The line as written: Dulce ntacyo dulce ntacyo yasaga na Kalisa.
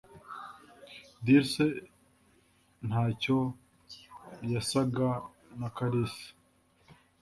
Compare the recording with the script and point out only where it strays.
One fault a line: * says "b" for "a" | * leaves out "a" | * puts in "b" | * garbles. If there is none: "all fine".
* leaves out "dulce ntacyo"